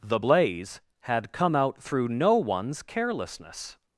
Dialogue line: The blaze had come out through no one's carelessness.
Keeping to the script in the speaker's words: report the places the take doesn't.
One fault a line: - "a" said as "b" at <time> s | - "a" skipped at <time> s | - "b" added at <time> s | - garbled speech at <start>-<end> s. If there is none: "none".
none